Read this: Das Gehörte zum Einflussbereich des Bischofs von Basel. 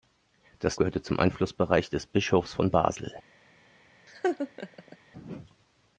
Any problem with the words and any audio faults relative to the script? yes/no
yes